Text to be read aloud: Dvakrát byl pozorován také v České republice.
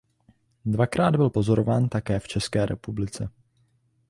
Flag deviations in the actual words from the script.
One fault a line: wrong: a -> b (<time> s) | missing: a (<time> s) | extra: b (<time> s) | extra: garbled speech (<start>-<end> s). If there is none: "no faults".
no faults